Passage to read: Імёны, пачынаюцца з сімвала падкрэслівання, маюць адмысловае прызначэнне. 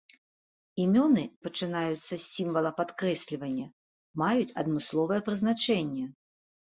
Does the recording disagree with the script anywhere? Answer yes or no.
no